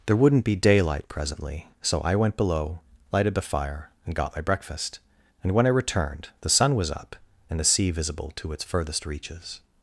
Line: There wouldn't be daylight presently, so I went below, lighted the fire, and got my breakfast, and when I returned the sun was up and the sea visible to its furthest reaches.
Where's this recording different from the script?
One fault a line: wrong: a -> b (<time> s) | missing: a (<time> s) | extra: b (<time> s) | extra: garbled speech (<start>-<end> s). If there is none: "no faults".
no faults